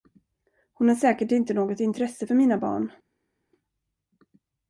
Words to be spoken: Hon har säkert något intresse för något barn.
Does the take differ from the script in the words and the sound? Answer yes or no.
yes